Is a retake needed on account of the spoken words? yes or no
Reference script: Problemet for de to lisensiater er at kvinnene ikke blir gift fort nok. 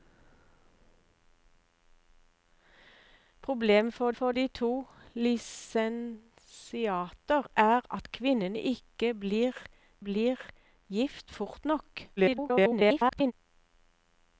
yes